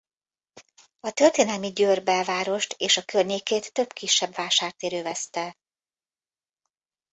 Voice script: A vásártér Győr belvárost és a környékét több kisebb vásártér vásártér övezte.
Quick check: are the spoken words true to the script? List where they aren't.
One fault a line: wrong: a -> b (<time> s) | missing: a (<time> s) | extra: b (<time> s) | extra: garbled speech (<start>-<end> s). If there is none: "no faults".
wrong: vásártér -> történelmi (1.1 s)
missing: vásártér (4.9 s)